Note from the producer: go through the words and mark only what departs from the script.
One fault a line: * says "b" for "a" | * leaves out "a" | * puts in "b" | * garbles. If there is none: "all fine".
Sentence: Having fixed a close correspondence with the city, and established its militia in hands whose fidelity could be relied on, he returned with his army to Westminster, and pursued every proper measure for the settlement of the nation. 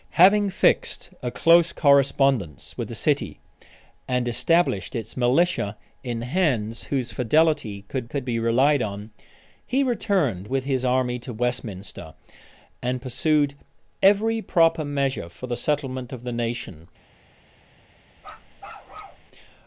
* puts in "could"